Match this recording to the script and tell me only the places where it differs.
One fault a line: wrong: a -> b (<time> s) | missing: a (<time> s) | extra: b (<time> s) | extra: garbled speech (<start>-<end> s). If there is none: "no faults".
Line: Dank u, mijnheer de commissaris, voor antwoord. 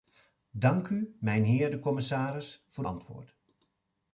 no faults